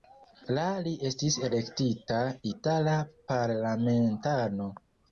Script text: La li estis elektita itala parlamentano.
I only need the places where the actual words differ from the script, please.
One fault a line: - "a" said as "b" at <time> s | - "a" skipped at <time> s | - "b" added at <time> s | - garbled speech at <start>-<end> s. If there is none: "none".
none